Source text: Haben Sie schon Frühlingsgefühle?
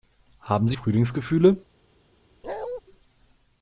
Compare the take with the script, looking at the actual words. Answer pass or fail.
fail